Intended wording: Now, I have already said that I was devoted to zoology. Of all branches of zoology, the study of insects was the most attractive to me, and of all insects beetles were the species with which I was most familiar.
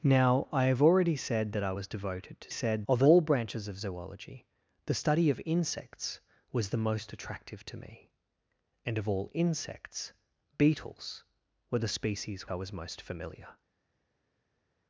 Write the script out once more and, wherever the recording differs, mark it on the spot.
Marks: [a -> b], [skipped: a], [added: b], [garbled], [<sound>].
Now, I have already said that I was devoted to [zoology. -> said] Of all branches of zoology, the study of insects was the most attractive to me, and of all insects beetles were the species [skipped: with which] I was most familiar.